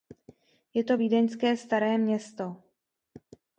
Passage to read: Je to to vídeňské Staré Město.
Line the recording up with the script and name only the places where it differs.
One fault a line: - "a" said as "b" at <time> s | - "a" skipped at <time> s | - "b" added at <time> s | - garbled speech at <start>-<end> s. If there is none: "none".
- "to" skipped at 1.0 s